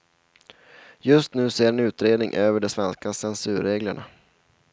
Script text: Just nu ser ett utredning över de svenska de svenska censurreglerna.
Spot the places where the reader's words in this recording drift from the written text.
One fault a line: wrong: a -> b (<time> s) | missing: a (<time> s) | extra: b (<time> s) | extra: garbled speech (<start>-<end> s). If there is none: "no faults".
wrong: ett -> en (1.7 s)
missing: de svenska (3.1 s)